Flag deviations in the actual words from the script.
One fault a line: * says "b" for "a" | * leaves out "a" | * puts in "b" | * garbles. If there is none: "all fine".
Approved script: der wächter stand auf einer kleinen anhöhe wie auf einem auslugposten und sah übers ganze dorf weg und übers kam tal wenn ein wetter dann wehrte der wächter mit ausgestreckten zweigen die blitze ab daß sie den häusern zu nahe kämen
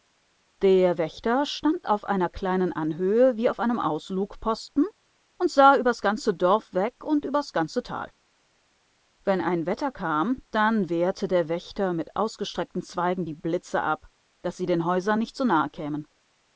* says "ganze" for "kam"
* puts in "kam"
* puts in "nicht"